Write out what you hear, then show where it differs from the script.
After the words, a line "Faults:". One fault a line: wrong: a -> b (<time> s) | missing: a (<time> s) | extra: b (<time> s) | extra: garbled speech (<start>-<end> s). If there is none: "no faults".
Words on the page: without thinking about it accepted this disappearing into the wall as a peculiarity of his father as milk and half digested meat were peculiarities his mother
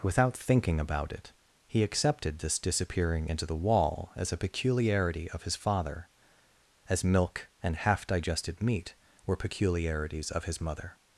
without thinking about it he accepted this disappearing into the wall as a peculiarity of his father as milk and half digested meat were peculiarities of his mother
Faults:
extra: he (1.7 s)
extra: of (10.3 s)